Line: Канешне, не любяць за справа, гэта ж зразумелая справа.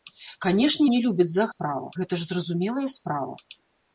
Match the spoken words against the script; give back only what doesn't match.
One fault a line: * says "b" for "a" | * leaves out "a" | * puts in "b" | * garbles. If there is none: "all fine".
all fine